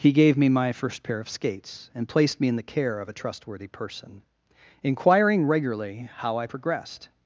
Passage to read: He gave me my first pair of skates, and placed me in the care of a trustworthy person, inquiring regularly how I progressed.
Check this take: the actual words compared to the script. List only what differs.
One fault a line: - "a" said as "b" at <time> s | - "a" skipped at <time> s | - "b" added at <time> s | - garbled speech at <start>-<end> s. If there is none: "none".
none